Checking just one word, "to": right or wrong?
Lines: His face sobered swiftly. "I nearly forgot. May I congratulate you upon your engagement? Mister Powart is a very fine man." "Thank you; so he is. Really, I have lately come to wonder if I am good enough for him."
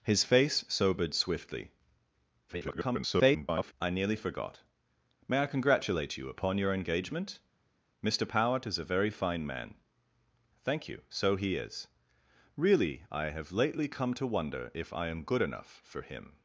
right